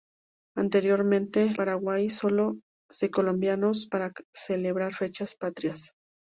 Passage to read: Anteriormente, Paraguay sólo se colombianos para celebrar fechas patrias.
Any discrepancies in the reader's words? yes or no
no